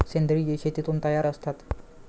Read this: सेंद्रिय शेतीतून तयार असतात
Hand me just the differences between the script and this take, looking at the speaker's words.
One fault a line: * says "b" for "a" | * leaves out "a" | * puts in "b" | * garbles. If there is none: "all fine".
all fine